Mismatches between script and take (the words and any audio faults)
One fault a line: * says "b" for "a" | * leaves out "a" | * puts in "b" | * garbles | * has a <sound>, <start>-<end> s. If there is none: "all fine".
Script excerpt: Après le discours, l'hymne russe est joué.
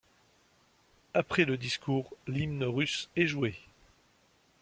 all fine